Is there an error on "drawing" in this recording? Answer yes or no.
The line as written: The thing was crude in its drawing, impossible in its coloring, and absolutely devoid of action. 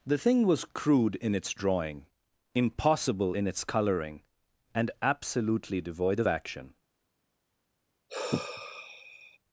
no